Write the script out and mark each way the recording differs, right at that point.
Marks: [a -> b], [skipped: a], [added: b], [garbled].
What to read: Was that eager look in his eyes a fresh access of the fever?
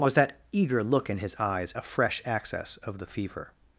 Was that eager look in his eyes a fresh access of the fever?